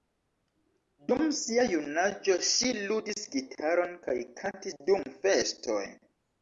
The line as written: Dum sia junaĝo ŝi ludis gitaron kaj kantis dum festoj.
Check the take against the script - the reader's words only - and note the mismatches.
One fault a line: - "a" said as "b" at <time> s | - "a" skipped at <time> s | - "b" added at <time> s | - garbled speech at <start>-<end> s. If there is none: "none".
none